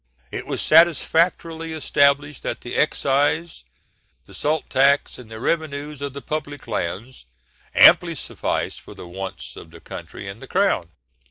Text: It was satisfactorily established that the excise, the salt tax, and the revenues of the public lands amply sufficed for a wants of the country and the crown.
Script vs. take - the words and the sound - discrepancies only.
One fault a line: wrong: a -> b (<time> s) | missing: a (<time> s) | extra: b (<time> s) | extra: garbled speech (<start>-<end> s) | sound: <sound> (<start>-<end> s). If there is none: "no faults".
wrong: a -> the (8.9 s)